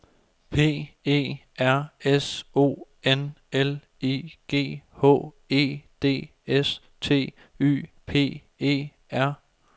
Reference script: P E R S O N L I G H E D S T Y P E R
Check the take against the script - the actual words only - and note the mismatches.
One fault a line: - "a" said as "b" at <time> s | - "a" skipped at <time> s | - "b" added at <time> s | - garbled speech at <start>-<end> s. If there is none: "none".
none